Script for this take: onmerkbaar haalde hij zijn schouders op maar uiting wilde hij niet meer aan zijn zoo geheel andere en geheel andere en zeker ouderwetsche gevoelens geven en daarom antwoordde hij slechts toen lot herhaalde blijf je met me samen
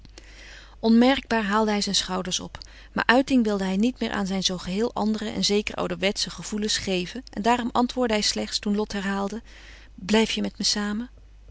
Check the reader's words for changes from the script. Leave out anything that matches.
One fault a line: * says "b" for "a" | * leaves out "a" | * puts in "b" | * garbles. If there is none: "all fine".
* leaves out "geheel andere en"